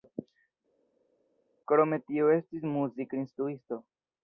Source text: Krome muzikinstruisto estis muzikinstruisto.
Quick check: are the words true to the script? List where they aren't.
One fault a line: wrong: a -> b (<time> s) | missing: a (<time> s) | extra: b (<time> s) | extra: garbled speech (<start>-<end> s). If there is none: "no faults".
wrong: muzikinstruisto -> tio (2.1 s)